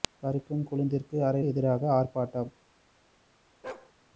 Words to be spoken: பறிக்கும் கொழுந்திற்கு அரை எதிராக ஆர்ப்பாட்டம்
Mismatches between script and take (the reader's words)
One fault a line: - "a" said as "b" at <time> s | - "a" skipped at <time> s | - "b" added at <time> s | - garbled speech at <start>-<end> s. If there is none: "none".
none